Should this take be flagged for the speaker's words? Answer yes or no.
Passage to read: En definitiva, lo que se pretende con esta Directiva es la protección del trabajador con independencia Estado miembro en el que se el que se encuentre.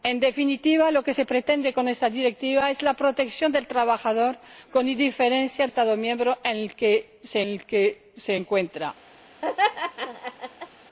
no